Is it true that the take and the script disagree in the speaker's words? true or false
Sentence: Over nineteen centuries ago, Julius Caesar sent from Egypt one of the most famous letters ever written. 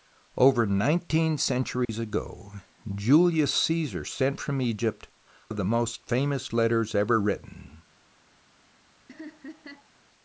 true